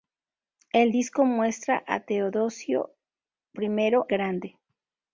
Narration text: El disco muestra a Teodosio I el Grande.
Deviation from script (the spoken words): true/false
true